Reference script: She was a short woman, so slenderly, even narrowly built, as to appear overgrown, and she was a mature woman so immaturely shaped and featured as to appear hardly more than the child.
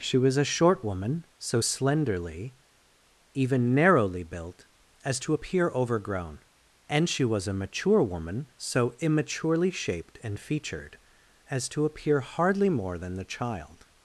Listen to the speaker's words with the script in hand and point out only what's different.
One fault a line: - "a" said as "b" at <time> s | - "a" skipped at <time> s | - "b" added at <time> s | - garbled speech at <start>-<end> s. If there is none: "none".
none